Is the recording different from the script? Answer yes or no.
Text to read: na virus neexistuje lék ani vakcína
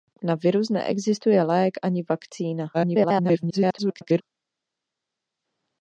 yes